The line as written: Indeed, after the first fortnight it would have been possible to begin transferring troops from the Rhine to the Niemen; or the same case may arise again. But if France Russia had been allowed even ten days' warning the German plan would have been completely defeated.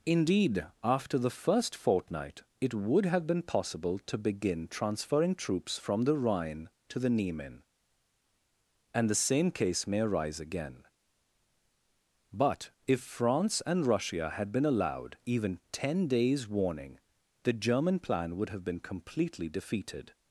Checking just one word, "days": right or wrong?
right